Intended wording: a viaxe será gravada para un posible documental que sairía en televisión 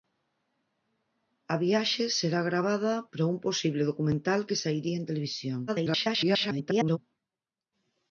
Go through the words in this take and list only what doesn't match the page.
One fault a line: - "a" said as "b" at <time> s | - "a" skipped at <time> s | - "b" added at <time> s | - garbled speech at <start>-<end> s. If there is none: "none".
- garbled speech at 5.7-7.0 s